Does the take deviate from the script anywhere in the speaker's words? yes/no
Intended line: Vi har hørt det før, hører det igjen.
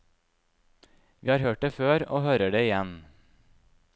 yes